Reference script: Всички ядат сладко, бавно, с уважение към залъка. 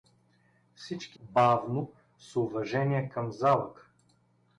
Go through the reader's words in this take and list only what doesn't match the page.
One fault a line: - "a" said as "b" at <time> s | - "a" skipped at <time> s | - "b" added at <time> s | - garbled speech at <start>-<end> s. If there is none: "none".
- "ядат сладко" skipped at 1.2 s